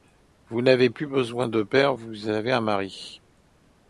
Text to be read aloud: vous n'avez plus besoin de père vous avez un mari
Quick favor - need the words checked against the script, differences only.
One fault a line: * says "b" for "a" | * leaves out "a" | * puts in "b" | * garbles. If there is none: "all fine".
all fine